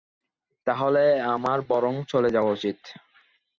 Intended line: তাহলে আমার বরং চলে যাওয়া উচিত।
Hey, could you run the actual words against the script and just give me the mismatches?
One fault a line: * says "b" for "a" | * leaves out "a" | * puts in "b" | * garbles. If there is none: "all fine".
all fine